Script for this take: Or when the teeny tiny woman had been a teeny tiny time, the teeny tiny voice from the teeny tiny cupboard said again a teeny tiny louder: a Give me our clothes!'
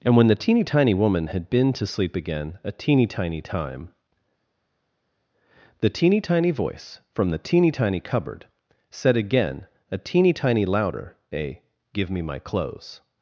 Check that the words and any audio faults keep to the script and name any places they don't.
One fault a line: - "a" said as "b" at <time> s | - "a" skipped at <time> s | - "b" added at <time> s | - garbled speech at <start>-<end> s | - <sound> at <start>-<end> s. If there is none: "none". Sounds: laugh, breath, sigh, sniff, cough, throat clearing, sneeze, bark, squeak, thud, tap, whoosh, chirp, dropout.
- "Or" said as "And" at 0.0 s
- "to sleep again" added at 1.7 s
- "our" said as "my" at 12.2 s